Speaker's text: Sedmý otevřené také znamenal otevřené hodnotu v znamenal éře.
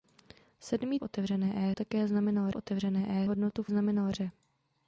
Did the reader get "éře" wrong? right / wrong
right